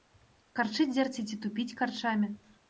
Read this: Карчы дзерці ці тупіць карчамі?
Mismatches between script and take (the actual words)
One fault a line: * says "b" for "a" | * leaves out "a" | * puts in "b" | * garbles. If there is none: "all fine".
all fine